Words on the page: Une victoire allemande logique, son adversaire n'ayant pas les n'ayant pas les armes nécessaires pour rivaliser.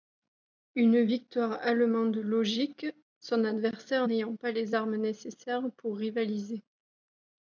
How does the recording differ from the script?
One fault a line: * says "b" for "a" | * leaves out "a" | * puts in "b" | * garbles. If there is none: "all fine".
* leaves out "n'ayant pas les"